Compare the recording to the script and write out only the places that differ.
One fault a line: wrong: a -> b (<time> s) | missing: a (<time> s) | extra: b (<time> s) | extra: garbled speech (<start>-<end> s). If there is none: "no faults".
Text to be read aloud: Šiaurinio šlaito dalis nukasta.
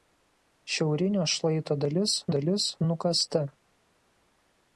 extra: dalis (2.4 s)